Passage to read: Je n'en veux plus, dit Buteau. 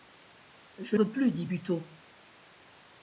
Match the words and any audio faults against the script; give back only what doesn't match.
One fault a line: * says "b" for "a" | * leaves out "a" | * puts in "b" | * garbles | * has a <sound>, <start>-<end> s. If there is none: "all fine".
* leaves out "n'en"